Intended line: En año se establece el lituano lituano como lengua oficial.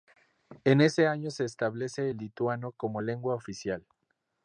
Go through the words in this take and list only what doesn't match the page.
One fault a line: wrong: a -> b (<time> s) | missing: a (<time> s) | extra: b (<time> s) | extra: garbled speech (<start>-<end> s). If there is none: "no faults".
extra: ese (0.8 s)
missing: lituano (2.7 s)